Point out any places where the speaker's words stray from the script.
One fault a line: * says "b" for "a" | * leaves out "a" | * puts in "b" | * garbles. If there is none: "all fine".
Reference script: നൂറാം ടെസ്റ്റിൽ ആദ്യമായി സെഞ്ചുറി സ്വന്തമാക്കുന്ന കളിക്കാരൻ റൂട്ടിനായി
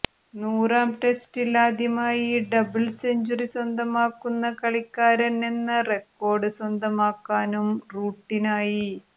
* puts in "ഡബിൾ"
* puts in "എന്ന റെക്കോർഡ് സ്വന്തമാക്കാനും"